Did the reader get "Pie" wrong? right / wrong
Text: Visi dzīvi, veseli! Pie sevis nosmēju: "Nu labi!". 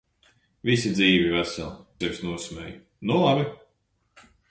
wrong